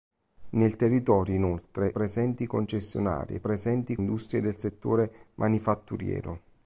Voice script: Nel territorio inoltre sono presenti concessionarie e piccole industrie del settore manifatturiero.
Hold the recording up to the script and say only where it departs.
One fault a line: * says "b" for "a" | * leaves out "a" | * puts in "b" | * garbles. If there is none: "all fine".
* leaves out "sono"
* says "presenti" for "piccole"